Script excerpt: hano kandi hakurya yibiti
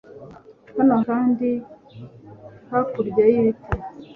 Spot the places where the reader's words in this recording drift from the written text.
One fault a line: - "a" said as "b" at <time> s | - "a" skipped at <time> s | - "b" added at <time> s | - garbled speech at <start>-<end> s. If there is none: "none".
none